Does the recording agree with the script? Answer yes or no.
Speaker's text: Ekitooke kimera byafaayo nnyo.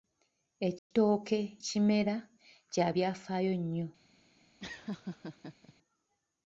no